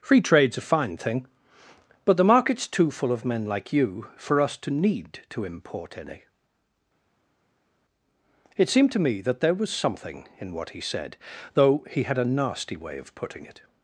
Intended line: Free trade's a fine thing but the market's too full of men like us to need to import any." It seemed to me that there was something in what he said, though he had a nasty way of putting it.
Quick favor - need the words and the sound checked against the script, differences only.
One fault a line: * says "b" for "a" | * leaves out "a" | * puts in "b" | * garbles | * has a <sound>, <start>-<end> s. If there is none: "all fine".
* puts in "you for"